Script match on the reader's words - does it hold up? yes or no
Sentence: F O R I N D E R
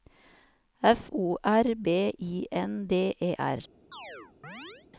no